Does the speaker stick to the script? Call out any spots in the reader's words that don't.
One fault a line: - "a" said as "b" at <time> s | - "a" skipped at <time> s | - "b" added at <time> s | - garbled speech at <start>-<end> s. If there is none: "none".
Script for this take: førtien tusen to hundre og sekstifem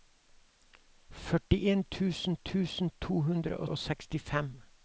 - "tusen" added at 2.5 s
- "og" added at 3.6 s